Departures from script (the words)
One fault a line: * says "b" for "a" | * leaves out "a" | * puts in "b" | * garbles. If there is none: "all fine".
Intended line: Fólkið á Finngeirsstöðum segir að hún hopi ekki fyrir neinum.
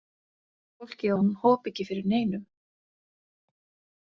* leaves out "á Finngeirsstöðum segir"